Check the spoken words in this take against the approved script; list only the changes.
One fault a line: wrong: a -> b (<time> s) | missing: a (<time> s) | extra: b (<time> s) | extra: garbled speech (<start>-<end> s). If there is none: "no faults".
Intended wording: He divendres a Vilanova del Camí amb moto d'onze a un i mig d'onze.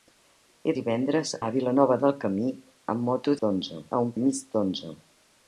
no faults